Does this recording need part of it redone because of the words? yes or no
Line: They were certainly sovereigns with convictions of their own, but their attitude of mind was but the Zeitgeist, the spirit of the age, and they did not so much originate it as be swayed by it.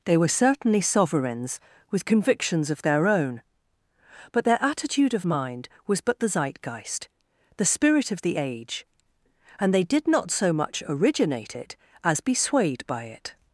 no